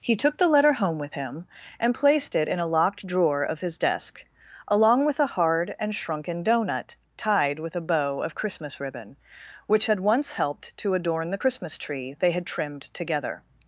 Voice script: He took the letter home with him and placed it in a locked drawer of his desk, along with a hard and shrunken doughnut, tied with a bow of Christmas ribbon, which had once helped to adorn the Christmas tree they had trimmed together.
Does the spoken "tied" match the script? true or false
true